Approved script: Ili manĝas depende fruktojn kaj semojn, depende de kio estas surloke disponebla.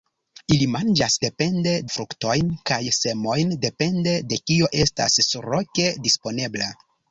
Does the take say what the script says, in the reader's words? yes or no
yes